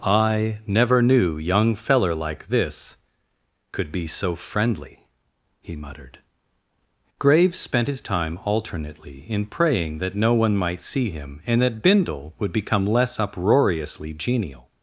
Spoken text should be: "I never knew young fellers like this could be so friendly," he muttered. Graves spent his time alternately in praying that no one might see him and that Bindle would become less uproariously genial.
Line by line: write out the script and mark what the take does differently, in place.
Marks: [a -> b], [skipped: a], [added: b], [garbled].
"I never knew young [fellers -> feller] like this could be so friendly," he muttered. Graves spent his time alternately in praying that no one might see him and that Bindle would become less uproariously genial.